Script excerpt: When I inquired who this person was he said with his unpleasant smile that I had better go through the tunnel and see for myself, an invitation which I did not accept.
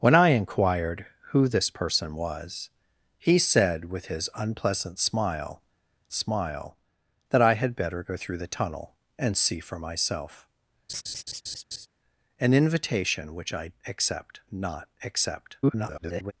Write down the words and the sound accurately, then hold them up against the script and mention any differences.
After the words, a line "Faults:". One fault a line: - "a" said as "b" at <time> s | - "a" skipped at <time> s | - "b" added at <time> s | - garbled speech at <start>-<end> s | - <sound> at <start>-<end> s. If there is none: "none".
When I inquired who this person was he said with his unpleasant smile smile that I had better go through the tunnel and see for myself, an invitation which I accept not accept. [garbled]
Faults:
- "smile" added at 6.1 s
- laugh at 10.9-11.9 s
- "did" said as "accept" at 13.9 s
- garbled speech at 15.6-16.3 s